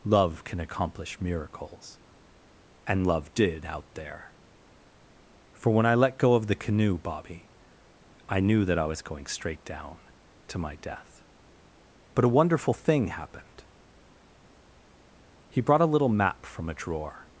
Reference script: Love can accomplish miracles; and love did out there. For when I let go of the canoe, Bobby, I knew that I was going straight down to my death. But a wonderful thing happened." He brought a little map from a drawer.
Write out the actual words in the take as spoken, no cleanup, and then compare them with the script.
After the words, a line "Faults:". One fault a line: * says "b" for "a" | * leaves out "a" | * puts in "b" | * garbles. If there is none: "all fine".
Love can accomplish miracles; and love did out there. For when I let go of the canoe, Bobby, I knew that I was going straight down to my death. But a wonderful thing happened." He brought a little map from a drawer.
Faults:
all fine